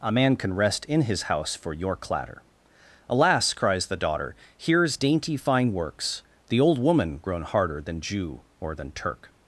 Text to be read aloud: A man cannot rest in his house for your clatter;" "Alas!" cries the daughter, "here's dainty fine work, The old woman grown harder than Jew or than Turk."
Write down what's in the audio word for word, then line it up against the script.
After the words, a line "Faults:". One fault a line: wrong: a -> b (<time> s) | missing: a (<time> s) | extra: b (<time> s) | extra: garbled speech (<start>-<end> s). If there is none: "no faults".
A man can rest in his house for your clatter;" "Alas!" cries the daughter, "here's dainty fine works, The old woman grown harder than Jew or than Turk."
Faults:
wrong: cannot -> can (0.3 s)
wrong: work -> works (5.7 s)